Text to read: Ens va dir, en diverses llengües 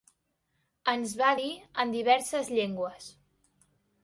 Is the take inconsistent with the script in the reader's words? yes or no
no